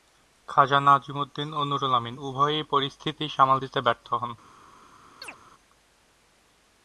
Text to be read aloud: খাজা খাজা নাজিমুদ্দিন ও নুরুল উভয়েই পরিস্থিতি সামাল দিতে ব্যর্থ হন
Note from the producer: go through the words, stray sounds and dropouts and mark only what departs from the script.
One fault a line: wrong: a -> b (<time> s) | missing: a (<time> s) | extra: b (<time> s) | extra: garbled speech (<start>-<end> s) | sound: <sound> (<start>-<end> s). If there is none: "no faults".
missing: খাজা (0.8 s)
extra: আমিন (1.9 s)
sound: chirp (5.2-5.4 s)